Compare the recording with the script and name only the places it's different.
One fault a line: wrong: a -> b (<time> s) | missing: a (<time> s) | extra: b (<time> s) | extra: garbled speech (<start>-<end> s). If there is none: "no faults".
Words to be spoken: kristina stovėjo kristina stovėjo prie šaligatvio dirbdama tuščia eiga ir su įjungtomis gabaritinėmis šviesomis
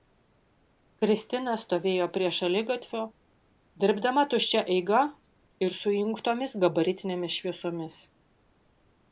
missing: kristina stovėjo (2.1 s)